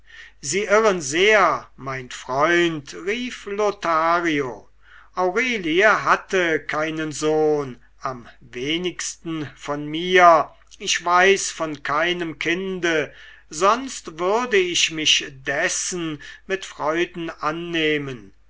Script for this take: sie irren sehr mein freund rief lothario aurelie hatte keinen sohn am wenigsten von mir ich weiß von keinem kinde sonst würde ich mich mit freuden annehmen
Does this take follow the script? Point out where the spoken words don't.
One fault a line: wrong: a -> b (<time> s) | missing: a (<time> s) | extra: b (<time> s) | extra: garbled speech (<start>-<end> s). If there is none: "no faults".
extra: dessen (15.3 s)